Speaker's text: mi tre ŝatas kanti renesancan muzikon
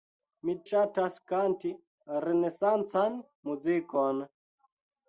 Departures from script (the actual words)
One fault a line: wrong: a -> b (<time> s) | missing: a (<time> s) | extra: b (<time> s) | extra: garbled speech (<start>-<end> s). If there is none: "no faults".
missing: tre (0.5 s)